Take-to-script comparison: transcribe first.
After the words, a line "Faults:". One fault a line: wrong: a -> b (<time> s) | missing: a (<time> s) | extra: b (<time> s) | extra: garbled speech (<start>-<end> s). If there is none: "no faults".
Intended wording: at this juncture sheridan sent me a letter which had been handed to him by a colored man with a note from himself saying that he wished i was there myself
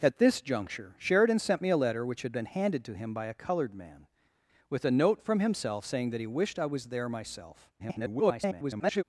at this juncture sheridan sent me a letter which had been handed to him by a colored man with a note from himself saying that he wished i was there myself [garbled]
Faults:
extra: garbled speech (7.8-9.0 s)